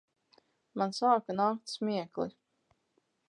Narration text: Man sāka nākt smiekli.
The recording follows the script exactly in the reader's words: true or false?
true